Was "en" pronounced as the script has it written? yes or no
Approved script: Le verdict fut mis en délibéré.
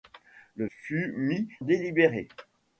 no